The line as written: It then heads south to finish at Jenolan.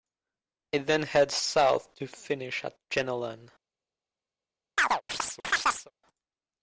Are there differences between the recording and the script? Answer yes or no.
no